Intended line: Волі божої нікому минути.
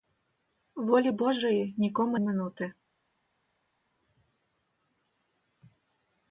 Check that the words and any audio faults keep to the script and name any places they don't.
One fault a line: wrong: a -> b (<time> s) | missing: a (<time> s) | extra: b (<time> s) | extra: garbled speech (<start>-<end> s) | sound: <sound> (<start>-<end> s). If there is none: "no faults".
no faults